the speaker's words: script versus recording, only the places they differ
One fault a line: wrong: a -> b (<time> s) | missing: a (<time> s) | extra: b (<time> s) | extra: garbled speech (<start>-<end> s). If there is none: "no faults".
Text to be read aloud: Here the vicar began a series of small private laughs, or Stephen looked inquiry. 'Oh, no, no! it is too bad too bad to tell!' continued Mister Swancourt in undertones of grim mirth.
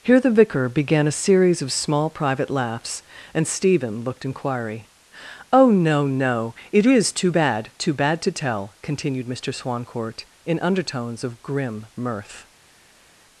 wrong: or -> and (3.4 s)